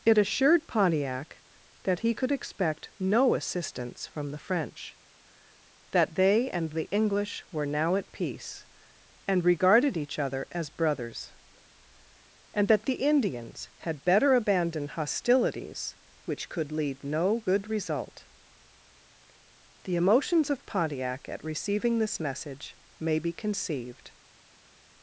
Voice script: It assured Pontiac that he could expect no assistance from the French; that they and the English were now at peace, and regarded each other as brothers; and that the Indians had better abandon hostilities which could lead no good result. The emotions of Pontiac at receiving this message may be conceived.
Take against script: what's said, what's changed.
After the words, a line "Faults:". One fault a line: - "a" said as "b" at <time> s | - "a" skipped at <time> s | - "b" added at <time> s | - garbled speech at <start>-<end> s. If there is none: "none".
It assured Pontiac that he could expect no assistance from the French; that they and the English were now at peace, and regarded each other as brothers; and that the Indians had better abandon hostilities which could lead no good result. The emotions of Pontiac at receiving this message may be conceived.
Faults:
none